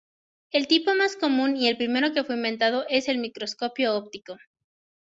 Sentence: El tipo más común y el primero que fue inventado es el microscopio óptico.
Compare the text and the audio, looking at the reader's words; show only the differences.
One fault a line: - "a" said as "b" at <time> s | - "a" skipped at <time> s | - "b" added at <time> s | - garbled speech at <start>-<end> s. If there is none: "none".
none